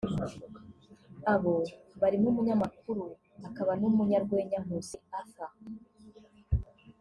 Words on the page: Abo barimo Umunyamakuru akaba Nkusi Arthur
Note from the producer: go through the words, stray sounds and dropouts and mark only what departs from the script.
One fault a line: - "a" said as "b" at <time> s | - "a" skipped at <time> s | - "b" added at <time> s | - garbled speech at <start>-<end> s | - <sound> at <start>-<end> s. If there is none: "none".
- "n'Umunyarwenya" added at 3.8 s